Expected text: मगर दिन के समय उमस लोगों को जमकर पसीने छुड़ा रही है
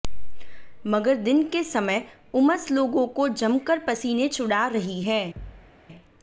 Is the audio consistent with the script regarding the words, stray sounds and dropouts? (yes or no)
no